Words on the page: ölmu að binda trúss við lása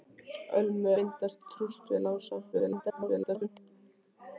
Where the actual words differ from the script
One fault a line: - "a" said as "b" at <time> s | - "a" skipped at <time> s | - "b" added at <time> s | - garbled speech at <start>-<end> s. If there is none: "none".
- "að" skipped at 0.9 s
- garbled speech at 2.5-3.5 s